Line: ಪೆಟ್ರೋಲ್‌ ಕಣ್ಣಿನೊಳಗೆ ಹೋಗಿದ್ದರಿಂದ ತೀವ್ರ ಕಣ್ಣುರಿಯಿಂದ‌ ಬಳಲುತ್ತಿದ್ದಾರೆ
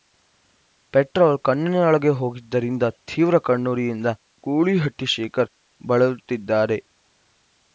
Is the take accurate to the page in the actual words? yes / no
no